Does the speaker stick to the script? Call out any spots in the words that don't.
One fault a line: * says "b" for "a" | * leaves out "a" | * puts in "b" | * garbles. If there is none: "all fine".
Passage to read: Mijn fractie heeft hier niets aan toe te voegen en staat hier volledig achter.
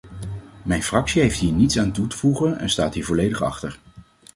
all fine